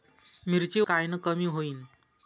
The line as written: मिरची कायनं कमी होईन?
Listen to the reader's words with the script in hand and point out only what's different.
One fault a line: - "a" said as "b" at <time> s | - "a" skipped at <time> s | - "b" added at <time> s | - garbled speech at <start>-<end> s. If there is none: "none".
none